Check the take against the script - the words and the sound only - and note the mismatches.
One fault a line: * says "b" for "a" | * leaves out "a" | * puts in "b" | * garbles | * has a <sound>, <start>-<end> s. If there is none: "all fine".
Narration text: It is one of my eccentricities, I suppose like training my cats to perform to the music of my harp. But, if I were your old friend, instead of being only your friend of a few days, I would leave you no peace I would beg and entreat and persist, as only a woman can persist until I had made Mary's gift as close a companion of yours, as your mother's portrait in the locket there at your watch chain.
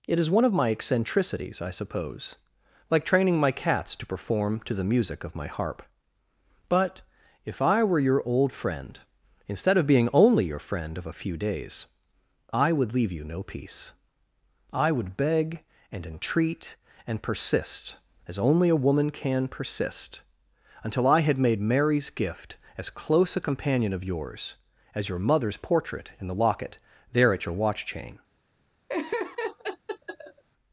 * has a laugh, 28.9-30.4 s